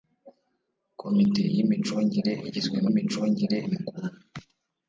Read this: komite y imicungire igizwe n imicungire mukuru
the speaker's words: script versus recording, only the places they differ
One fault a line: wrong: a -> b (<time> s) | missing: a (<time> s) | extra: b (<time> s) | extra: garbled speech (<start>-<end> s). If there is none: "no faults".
no faults